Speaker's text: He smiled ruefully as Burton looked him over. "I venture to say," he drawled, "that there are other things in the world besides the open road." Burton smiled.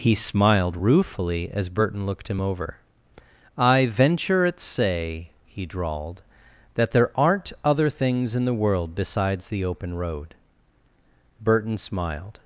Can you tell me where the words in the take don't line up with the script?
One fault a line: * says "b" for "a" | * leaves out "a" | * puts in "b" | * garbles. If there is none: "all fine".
* says "at" for "to"
* says "aren't" for "are"